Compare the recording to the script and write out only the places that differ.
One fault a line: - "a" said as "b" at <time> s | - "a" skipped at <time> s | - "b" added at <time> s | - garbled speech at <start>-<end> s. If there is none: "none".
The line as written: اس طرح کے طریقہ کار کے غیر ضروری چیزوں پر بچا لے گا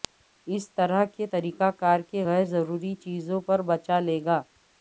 none